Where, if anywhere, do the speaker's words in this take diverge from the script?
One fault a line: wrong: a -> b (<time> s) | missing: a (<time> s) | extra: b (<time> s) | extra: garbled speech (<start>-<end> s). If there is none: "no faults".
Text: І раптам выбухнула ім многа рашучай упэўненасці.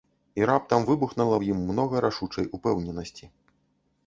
extra: ў (1.3 s)